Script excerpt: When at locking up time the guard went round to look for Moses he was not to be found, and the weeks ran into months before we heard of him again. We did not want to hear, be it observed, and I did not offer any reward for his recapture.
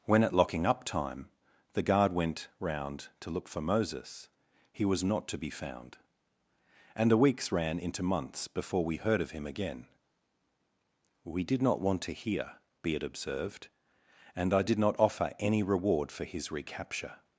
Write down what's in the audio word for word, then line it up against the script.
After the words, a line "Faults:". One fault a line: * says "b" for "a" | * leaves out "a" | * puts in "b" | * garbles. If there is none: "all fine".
When at locking up time the guard went round to look for Moses he was not to be found, and the weeks ran into months before we heard of him again. We did not want to hear, be it observed, and I did not offer any reward for his recapture.
Faults:
all fine